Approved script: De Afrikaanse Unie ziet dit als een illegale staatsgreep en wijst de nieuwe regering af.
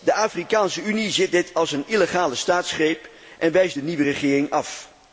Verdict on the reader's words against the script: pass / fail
pass